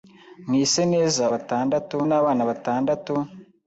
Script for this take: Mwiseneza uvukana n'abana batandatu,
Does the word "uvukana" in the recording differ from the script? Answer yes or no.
yes